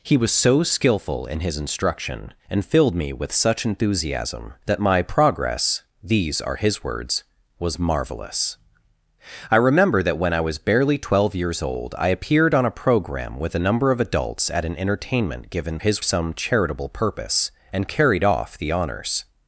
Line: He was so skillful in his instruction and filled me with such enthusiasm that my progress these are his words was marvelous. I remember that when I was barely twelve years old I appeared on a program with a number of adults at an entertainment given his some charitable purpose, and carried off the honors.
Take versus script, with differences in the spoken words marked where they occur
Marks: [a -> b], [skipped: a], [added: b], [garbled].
He was so skillful in his instruction and filled me with such enthusiasm that my progress these are his words was marvelous. I remember that when I was barely twelve years old I appeared on a program with a number of adults at an entertainment given his some charitable purpose, and carried off the honors.